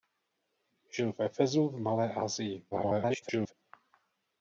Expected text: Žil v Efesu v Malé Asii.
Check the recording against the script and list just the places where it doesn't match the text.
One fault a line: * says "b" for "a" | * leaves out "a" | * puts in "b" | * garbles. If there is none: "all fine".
* garbles